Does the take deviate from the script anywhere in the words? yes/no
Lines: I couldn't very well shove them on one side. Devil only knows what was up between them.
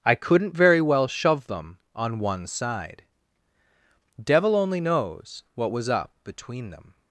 no